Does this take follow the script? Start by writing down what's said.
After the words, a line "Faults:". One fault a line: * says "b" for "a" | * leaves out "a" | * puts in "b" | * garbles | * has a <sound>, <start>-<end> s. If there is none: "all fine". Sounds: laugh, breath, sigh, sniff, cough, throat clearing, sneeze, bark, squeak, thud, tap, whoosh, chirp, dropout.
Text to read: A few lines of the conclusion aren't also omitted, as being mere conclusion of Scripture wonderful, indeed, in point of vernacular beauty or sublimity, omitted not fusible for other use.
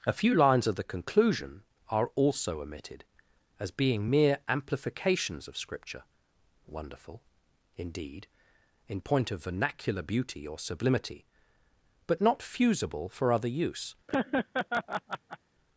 A few lines of the conclusion are also omitted, as being mere amplifications of Scripture wonderful, indeed, in point of vernacular beauty or sublimity, but not fusible for other use.
Faults:
* says "are" for "aren't"
* says "amplifications" for "conclusion"
* says "but" for "omitted"
* has a laugh, 14.1-15.4 s